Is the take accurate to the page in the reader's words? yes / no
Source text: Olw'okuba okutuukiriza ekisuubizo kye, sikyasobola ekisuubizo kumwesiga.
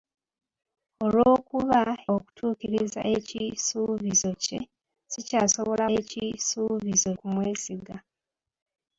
yes